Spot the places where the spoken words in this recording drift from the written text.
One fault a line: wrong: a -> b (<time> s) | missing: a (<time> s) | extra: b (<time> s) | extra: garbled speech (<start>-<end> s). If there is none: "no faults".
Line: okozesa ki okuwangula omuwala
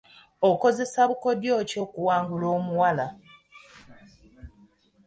extra: bukodyo (1.1 s)